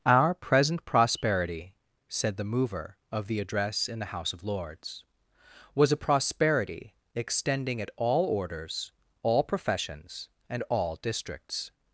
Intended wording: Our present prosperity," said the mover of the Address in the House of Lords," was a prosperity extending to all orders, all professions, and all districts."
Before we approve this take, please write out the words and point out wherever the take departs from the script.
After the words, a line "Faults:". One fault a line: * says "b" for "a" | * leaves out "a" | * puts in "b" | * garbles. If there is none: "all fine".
Our present prosperity," said the mover of the Address in the House of Lords," was a prosperity extending at all orders, all professions, and all districts."
Faults:
* says "at" for "to"